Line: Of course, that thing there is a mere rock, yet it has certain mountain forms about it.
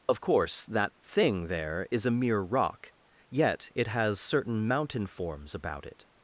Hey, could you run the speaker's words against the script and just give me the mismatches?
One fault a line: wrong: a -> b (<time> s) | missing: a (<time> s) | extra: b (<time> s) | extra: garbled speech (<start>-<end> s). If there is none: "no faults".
no faults